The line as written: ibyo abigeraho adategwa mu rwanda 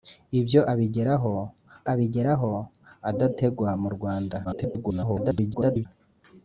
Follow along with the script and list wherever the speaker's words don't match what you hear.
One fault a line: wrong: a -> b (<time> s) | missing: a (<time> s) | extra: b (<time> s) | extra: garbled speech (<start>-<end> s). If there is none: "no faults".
extra: abigeraho (1.9 s)
extra: garbled speech (4.4-5.9 s)